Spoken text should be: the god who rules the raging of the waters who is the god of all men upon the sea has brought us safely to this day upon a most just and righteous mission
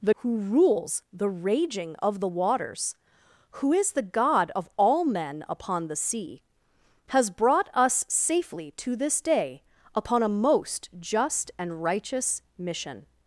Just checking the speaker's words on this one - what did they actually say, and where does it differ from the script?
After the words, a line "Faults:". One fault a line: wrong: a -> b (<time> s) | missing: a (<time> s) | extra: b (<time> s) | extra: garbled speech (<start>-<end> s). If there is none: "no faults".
the who rules the raging of the waters who is the god of all men upon the sea has brought us safely to this day upon a most just and righteous mission
Faults:
missing: god (0.1 s)